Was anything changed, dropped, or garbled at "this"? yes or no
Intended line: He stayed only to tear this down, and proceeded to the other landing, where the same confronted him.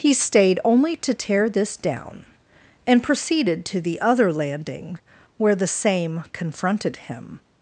no